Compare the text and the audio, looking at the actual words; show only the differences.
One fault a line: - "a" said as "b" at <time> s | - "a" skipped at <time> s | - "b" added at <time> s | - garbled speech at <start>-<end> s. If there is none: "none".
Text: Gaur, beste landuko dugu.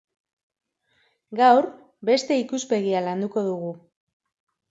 - "ikuspegia" added at 2.4 s